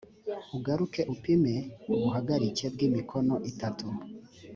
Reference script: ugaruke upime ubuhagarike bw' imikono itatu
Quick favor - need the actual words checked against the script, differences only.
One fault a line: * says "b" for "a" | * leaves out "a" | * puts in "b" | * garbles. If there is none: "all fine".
all fine